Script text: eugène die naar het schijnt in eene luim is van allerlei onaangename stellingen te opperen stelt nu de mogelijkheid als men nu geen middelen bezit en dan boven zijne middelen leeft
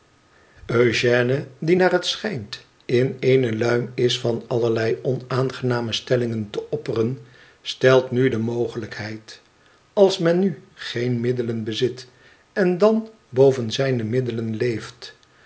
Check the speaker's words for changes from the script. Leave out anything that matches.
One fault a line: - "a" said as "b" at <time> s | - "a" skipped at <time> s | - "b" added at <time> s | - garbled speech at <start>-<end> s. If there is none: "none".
none